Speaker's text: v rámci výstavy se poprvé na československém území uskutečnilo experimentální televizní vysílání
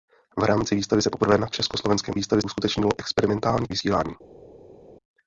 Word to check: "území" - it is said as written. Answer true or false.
false